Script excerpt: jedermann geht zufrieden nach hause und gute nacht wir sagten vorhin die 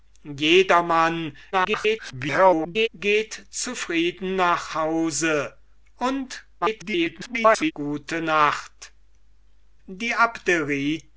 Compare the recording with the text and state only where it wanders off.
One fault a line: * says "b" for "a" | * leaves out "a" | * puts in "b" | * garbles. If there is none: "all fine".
* garbles
* garbles
* leaves out "wir sagten vorhin"